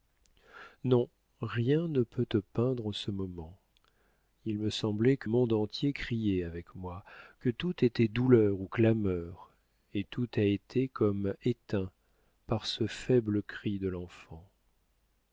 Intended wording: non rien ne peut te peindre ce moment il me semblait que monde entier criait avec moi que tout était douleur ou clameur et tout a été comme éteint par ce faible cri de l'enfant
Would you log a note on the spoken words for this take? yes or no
no